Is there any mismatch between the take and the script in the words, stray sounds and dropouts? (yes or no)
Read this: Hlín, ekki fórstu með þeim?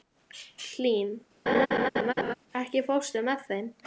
yes